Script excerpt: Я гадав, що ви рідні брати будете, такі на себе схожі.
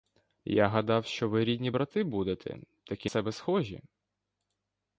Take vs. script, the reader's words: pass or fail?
fail